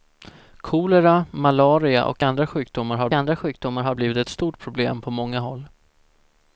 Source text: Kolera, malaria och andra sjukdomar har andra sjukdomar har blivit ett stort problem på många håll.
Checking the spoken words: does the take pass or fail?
pass